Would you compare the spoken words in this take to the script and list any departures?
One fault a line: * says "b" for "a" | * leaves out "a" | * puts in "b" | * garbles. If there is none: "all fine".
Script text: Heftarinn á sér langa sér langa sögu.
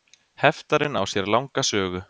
* leaves out "sér langa"